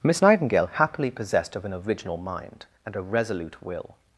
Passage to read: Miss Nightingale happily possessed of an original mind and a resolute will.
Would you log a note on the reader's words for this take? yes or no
no